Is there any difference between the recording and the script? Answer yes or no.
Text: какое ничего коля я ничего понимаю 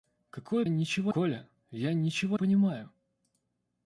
no